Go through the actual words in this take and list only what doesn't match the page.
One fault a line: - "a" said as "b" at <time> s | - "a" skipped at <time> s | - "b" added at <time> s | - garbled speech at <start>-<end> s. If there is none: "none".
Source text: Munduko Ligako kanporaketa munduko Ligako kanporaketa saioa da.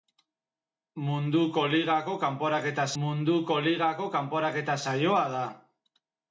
none